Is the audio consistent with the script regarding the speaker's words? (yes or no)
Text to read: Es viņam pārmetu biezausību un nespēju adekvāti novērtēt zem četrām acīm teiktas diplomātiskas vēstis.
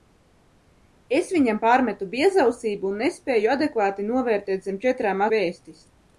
no